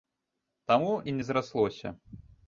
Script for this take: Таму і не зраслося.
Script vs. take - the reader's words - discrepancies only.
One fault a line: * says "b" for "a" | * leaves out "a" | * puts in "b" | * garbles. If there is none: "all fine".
all fine